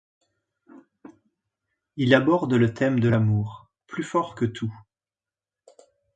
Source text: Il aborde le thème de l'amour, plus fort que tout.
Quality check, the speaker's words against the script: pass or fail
pass